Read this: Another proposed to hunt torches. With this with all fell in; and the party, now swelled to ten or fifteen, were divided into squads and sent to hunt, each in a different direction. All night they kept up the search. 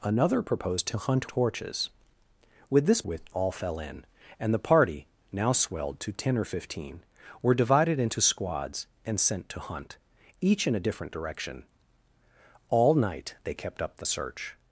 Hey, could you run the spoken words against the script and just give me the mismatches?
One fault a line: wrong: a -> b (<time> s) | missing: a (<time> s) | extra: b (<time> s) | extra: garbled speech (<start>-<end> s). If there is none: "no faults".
no faults